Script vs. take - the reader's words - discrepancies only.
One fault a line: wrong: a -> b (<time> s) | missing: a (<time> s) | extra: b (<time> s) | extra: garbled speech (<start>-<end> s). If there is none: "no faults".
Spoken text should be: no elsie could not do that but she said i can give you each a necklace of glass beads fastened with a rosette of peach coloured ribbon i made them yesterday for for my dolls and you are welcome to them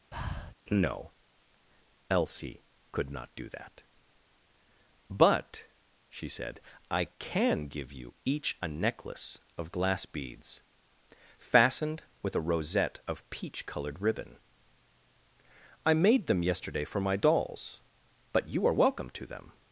missing: for (17.0 s)
wrong: and -> but (18.3 s)